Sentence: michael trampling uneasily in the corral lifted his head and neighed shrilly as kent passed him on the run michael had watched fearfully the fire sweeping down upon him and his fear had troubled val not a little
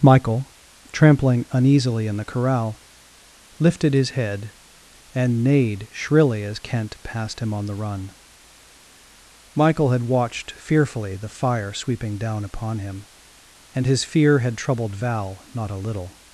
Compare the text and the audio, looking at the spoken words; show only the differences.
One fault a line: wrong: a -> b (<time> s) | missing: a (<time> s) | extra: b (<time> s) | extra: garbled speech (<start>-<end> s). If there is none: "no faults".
no faults